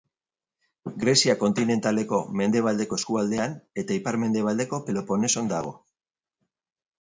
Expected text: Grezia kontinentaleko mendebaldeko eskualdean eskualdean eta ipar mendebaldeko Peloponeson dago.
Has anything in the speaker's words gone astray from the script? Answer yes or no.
yes